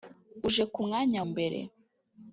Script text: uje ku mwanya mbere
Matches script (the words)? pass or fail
pass